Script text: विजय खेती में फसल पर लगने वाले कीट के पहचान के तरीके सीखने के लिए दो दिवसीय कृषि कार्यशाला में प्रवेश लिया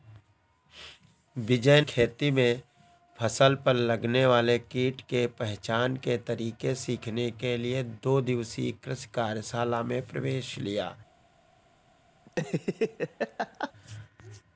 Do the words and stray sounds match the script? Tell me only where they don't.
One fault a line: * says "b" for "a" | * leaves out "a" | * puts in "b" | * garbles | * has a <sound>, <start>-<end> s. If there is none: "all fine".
* has a laugh, 12.3-13.7 s